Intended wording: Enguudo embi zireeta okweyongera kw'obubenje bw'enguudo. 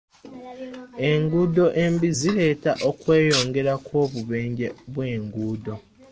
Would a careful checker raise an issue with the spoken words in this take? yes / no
no